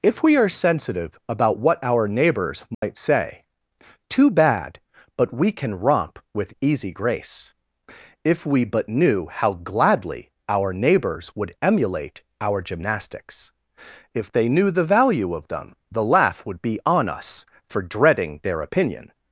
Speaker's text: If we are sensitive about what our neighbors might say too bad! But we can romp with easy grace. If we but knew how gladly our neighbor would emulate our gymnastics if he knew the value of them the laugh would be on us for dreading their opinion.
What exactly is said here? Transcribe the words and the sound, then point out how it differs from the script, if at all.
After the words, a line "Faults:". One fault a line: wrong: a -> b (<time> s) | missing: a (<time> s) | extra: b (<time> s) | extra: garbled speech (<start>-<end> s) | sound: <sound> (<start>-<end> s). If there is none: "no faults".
If we are sensitive about what our neighbors might say too bad! But we can romp with easy grace. If we but knew how gladly our neighbors would emulate our gymnastics if they knew the value of them the laugh would be on us for dreading their opinion.
Faults:
sound: dropout (2.7-2.8 s)
wrong: neighbor -> neighbors (10.7 s)
wrong: he -> they (14.3 s)